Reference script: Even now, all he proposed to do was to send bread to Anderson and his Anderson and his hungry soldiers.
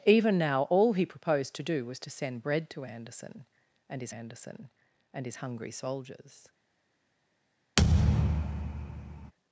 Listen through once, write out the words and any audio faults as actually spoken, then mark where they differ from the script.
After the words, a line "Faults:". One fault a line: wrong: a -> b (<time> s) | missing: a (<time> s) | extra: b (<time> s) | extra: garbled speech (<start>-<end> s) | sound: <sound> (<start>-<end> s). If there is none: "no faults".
Even now, all he proposed to do was to send bread to Anderson and his Anderson and his hungry soldiers.
Faults:
sound: thud (7.8-9.3 s)